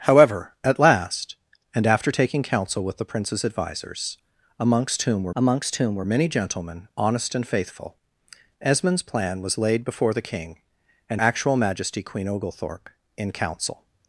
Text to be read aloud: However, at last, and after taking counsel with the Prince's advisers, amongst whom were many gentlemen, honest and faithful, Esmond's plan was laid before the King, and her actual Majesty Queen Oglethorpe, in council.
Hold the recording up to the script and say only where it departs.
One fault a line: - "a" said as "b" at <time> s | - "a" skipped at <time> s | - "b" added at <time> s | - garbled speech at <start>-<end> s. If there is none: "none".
- "amongst whom were" added at 5.4 s
- "her" skipped at 11.2 s